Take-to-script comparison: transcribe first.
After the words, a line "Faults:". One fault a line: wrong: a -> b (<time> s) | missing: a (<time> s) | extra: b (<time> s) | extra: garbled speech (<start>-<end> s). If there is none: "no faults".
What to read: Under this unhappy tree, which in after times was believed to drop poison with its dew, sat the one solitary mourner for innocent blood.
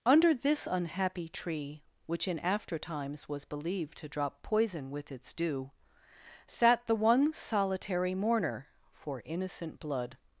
Under this unhappy tree, which in after times was believed to drop poison with its dew, sat the one solitary mourner for innocent blood.
Faults:
no faults